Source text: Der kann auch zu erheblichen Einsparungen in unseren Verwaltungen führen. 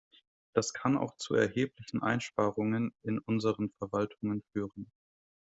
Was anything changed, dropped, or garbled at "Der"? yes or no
yes